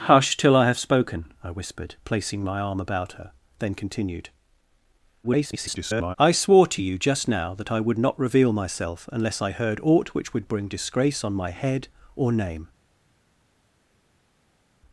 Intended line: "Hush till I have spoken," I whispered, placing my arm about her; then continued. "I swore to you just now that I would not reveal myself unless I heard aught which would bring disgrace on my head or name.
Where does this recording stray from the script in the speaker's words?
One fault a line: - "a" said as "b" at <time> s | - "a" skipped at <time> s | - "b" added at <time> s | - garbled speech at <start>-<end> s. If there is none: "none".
- garbled speech at 5.2-6.2 s